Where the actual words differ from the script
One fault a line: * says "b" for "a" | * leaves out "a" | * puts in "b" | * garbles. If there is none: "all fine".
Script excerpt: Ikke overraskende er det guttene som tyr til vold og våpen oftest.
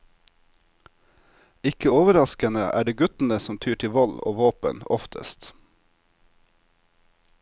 all fine